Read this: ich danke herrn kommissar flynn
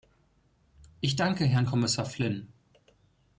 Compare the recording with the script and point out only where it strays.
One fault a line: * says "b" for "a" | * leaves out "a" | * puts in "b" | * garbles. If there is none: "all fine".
all fine